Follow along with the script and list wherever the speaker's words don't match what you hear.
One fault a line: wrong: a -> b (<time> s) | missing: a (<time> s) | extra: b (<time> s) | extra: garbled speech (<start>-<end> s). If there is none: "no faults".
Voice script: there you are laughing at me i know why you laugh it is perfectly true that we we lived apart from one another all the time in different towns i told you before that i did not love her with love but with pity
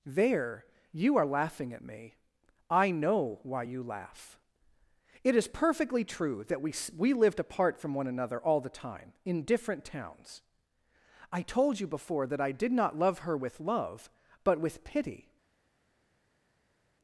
no faults